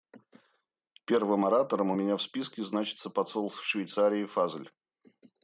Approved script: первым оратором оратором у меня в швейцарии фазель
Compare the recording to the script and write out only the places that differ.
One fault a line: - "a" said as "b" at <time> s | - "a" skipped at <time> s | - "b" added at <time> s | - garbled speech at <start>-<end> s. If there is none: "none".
- "оратором" skipped at 1.9 s
- "списке значится посол" added at 2.2 s